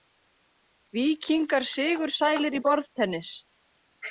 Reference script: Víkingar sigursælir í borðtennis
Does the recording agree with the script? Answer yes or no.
yes